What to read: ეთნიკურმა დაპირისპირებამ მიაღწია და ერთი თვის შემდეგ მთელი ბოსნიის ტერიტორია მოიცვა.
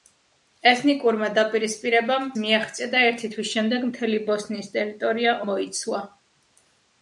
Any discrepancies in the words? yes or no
no